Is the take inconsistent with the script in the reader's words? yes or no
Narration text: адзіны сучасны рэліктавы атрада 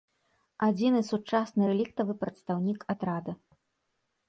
yes